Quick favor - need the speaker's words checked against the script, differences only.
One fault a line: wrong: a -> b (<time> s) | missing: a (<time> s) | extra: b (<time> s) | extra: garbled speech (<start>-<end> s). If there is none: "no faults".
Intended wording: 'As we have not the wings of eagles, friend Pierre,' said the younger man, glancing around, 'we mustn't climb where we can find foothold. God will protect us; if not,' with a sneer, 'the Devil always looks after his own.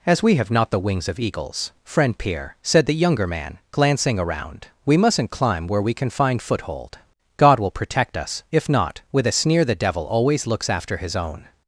no faults